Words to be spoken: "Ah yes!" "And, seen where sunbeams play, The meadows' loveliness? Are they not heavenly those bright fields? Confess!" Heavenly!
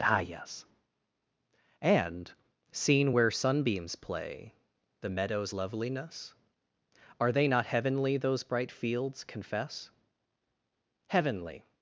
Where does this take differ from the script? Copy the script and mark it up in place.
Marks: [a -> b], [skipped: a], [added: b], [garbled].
"Ah yes!" "And, seen where sunbeams play, The meadows' loveliness? Are they not heavenly those bright fields? Confess!" Heavenly!